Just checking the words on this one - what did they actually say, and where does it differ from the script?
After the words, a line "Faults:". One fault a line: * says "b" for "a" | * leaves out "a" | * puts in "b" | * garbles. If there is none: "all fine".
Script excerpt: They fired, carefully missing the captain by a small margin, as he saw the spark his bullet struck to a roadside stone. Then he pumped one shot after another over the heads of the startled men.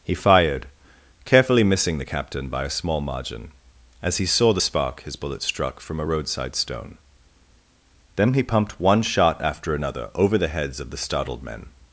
He fired, carefully missing the captain by a small margin, as he saw the spark his bullet struck from a roadside stone. Then he pumped one shot after another over the heads of the startled men.
Faults:
* says "He" for "They"
* says "from" for "to"